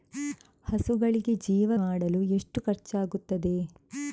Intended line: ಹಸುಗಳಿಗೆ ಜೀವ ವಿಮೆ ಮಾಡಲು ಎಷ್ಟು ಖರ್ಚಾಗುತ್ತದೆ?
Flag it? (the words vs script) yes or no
yes